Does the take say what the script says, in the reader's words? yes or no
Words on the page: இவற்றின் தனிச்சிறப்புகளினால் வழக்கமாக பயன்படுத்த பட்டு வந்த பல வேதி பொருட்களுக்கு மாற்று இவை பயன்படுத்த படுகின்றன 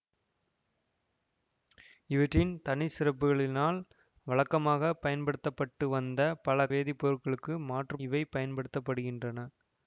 yes